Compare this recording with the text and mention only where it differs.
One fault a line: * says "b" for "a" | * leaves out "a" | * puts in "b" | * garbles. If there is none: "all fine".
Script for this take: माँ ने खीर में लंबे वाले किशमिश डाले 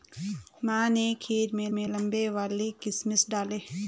* puts in "में"